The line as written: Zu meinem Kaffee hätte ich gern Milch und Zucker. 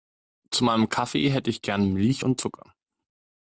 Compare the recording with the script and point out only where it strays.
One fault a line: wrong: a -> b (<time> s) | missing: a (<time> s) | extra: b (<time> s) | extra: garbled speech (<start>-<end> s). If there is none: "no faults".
no faults